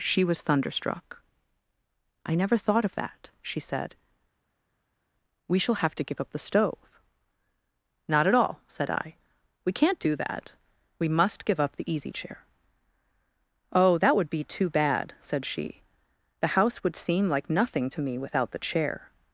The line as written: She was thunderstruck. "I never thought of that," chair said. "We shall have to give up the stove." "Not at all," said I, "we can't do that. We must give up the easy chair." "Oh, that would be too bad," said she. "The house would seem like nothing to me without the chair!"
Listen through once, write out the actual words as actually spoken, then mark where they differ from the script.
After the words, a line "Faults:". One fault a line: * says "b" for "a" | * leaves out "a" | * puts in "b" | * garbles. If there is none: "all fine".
She was thunderstruck. "I never thought of that," she said. "We shall have to give up the stove." "Not at all," said I, "we can't do that. We must give up the easy chair." "Oh, that would be too bad," said she. "The house would seem like nothing to me without the chair!"
Faults:
* says "she" for "chair"